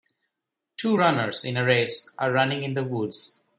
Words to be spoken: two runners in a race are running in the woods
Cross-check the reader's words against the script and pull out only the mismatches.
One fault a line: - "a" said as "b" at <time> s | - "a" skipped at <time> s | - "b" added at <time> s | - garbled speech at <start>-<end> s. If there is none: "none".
none